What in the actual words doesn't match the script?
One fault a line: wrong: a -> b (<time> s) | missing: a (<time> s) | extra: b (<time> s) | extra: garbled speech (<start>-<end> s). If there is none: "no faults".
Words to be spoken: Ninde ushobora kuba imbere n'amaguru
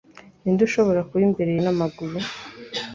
no faults